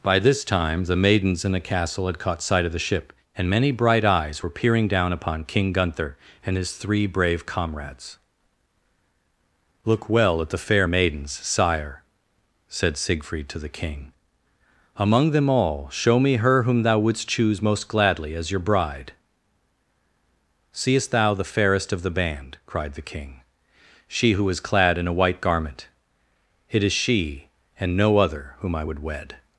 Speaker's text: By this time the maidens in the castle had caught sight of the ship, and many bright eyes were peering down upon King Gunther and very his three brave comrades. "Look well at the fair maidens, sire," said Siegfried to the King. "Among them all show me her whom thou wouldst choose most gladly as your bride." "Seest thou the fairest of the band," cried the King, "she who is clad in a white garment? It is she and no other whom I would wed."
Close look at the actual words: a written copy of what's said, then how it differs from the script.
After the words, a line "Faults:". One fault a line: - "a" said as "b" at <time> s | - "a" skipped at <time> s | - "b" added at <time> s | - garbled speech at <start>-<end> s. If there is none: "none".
By this time the maidens in the castle had caught sight of the ship, and many bright eyes were peering down upon King Gunther and his three brave comrades. "Look well at the fair maidens, sire," said Siegfried to the King. "Among them all show me her whom thou wouldst choose most gladly as your bride." "Seest thou the fairest of the band," cried the King, "she who is clad in a white garment? It is she and no other whom I would wed."
Faults:
- "very" skipped at 6.6 s